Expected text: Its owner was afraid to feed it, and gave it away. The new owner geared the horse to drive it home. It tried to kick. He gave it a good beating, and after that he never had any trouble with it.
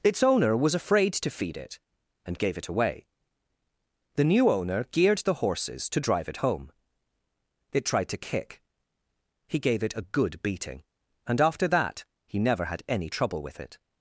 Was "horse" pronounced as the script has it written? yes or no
no